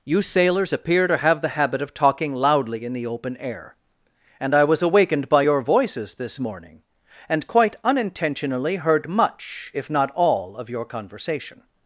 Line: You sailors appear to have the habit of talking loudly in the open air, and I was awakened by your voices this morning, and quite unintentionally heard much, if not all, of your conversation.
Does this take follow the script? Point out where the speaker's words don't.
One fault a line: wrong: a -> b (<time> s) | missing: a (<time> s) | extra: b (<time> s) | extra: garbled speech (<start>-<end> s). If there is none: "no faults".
no faults